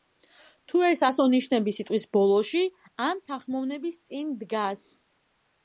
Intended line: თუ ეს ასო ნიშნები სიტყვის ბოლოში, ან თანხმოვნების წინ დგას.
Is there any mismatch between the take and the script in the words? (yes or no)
no